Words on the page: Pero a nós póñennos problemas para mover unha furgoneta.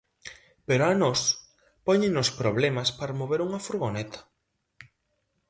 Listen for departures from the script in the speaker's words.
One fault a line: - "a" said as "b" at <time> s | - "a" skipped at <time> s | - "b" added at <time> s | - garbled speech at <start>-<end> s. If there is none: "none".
none